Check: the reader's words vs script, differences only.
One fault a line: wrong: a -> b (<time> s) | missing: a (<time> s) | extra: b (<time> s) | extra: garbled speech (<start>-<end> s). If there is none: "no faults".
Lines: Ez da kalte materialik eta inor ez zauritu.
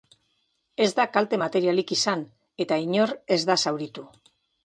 extra: izan (2.0 s)
extra: da (3.5 s)